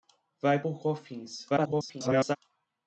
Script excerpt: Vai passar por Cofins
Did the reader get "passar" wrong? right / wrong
wrong